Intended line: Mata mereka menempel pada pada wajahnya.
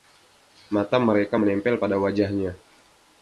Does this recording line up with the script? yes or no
no